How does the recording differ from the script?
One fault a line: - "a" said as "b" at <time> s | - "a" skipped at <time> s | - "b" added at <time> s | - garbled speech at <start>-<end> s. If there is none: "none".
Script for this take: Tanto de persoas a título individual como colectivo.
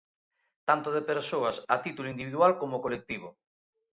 none